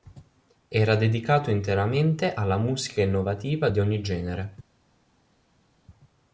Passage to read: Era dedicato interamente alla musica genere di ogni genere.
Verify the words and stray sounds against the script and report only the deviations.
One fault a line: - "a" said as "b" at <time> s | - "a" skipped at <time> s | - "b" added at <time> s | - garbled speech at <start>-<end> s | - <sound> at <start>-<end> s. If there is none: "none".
- "genere" said as "innovativa" at 3.0 s